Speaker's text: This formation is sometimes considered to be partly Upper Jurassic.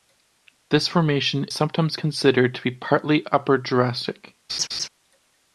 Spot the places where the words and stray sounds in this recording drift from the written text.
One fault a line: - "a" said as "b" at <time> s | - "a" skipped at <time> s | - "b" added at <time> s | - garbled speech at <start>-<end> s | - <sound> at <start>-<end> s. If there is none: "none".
- "is" skipped at 1.4 s
- laugh at 4.5-4.9 s